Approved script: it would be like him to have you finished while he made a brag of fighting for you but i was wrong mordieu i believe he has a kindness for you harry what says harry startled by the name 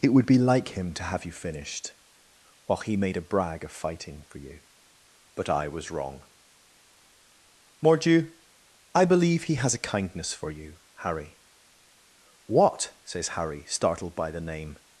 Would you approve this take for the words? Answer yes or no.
yes